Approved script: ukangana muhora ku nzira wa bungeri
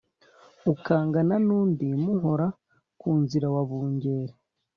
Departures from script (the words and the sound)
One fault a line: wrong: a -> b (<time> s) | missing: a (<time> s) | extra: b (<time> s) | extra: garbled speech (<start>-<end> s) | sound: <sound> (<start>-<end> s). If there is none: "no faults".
extra: n'undi (1.4 s)